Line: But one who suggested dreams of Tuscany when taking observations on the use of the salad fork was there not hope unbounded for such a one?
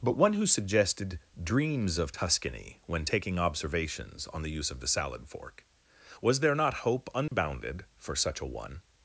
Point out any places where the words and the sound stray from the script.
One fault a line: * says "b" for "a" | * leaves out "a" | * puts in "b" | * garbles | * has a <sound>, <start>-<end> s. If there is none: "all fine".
* has a dropout, 7.3-7.3 s